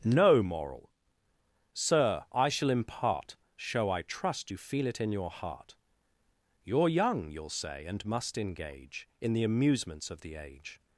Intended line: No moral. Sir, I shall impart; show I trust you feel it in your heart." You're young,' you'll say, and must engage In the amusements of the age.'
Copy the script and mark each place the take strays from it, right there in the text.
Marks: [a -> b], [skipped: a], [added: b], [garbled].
No moral. Sir, I shall impart; show I trust you feel it in your heart." You're young,' you'll say, and must engage In the amusements of the age.'